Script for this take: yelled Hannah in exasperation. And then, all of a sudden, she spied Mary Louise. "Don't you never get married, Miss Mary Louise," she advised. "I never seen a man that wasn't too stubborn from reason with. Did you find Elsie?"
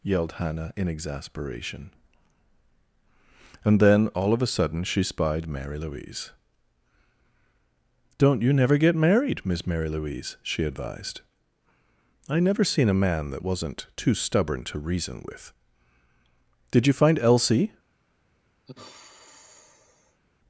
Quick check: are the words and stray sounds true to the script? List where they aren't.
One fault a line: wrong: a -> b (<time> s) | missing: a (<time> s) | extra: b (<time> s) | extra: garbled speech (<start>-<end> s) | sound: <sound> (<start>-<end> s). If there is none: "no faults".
wrong: from -> to (14.7 s)
sound: sigh (18.7-20.2 s)